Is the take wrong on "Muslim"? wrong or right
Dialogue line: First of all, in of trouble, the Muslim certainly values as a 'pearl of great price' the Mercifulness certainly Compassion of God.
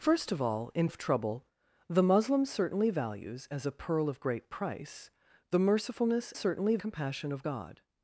right